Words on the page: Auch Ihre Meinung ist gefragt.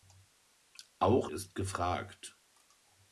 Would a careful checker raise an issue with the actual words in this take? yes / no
yes